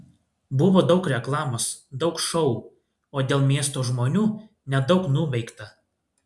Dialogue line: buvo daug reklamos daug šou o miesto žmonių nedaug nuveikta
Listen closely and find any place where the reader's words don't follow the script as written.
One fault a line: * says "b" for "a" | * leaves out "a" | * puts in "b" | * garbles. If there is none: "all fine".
* puts in "dėl"